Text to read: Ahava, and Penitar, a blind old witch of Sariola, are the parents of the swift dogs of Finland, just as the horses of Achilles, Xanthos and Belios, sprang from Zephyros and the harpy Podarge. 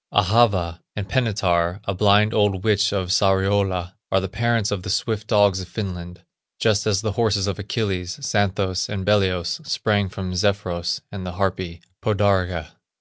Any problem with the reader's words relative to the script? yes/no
no